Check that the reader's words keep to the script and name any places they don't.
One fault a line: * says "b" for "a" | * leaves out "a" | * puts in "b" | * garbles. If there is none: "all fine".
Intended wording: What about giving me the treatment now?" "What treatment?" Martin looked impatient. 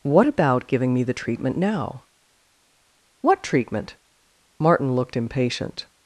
all fine